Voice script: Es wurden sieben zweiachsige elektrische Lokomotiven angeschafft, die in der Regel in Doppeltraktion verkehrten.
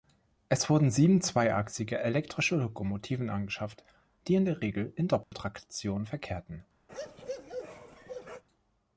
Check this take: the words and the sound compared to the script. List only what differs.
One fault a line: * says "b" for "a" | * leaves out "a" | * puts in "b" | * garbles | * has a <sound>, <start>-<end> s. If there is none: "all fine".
* has a dropout, 5.2-5.3 s
* has a bark, 6.9-8.4 s